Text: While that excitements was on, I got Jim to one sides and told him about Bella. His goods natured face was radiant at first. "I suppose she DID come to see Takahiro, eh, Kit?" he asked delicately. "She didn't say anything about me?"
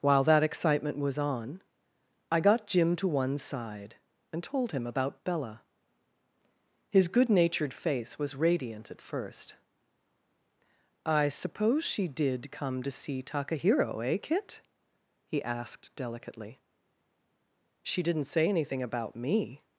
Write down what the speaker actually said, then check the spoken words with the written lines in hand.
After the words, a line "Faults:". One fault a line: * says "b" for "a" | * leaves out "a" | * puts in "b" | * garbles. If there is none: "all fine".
While that excitement was on, I got Jim to one side and told him about Bella. His good natured face was radiant at first. "I suppose she DID come to see Takahiro, eh, Kit?" he asked delicately. "She didn't say anything about me?"
Faults:
* says "excitement" for "excitements"
* says "side" for "sides"
* says "good" for "goods"